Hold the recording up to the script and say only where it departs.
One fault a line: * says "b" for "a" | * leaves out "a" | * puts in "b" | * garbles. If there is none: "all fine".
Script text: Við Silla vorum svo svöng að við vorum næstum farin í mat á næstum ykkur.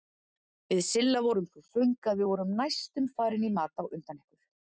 * says "undan" for "næstum"